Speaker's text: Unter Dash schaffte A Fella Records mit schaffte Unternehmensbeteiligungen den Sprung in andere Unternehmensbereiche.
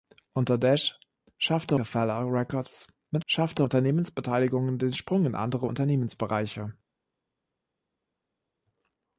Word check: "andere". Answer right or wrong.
right